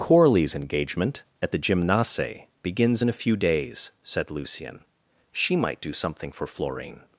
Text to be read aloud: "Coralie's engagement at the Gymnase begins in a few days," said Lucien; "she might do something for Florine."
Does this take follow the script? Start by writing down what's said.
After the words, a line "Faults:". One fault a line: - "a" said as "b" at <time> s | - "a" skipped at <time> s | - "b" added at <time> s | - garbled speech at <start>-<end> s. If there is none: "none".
"Coralie's engagement at the Gymnase begins in a few days," said Lucien; "she might do something for Florine."
Faults:
none